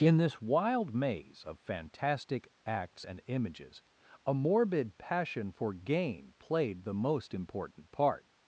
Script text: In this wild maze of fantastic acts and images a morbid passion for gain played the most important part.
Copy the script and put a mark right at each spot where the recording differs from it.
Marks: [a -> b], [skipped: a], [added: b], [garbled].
In this wild maze of fantastic acts and images a morbid passion for gain played the most important part.